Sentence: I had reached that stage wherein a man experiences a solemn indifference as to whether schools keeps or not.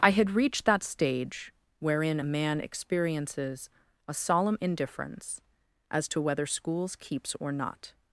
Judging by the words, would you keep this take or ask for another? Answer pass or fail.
pass